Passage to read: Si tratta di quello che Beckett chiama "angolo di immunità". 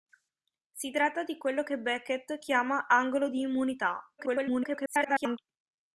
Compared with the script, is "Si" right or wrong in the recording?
right